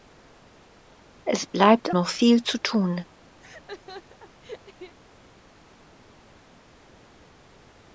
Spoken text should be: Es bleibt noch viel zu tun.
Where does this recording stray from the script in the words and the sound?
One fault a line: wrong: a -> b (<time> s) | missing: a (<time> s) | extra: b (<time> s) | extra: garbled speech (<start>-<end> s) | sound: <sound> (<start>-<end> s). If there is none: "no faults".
sound: laugh (3.4-5.0 s)